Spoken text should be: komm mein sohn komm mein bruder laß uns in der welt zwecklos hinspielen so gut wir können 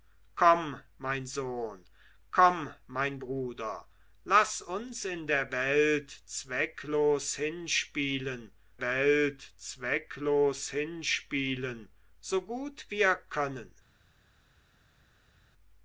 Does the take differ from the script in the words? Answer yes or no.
yes